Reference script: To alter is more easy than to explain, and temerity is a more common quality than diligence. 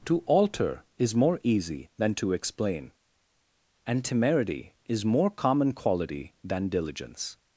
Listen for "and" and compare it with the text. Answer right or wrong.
right